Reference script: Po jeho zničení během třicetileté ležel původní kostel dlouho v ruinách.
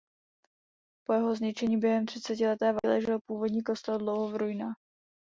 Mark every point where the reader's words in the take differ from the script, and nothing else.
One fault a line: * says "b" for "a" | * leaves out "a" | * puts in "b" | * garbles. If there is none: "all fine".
all fine